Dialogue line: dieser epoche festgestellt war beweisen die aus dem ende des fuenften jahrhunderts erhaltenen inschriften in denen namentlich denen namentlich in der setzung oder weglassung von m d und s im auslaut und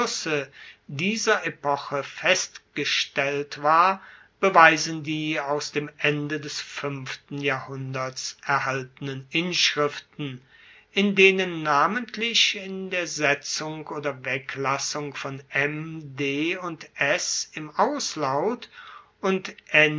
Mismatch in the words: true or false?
true